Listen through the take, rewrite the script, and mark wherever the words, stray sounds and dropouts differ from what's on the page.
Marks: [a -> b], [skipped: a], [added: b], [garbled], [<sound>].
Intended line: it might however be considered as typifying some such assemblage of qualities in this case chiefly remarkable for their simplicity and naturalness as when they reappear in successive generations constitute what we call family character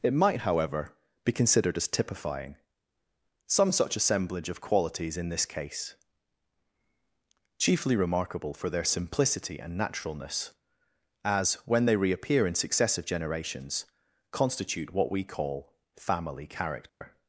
it might however be considered as typifying some such assemblage of qualities in this case chiefly remarkable for their simplicity and naturalness as when they reappear in successive generations constitute what we call family character [dropout]